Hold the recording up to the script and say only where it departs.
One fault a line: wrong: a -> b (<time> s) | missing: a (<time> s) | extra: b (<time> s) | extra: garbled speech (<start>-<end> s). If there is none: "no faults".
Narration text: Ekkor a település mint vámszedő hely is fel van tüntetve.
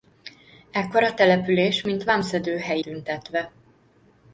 missing: is fel van (2.8 s)